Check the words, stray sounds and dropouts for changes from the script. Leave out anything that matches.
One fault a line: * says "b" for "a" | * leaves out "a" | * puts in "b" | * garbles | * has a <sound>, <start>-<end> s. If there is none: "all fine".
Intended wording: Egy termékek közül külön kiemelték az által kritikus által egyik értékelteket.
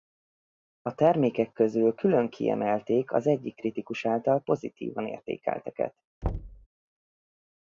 * says "A" for "Egy"
* says "egyik" for "által"
* says "pozitívan" for "egyik"
* has a thud, 6.2-6.7 s